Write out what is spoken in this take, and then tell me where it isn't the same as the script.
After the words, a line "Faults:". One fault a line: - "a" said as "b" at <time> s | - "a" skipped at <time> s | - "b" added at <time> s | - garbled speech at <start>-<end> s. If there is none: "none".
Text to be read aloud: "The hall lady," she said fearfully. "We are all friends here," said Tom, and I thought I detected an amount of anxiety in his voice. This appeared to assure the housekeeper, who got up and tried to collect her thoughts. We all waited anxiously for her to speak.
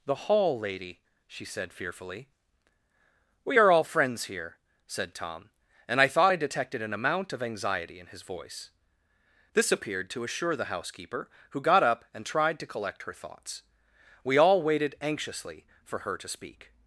"The hall lady," she said fearfully. "We are all friends here," said Tom, and I thought I detected an amount of anxiety in his voice. This appeared to assure the housekeeper, who got up and tried to collect her thoughts. We all waited anxiously for her to speak.
Faults:
none